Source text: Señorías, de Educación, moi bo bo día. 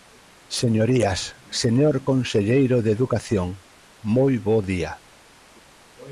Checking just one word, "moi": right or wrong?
right